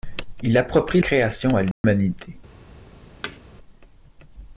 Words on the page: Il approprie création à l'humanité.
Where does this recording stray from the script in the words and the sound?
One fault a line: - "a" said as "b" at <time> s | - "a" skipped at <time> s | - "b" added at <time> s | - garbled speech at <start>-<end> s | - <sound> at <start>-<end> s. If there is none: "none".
- dropout at 1.7-1.8 s
- thud at 3.2-3.4 s